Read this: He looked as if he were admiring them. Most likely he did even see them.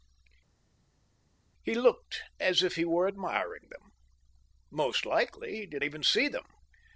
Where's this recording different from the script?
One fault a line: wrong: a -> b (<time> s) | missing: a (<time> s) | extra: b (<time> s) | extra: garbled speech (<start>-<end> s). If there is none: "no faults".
no faults